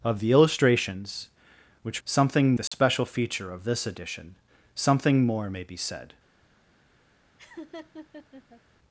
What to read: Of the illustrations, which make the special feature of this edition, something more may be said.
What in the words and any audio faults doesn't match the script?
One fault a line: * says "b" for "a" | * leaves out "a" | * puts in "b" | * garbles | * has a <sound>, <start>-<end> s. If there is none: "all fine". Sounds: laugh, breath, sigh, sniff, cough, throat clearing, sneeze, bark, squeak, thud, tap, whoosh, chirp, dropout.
* says "something" for "make"
* has a dropout, 2.7-2.7 s
* has a laugh, 7.4-8.6 s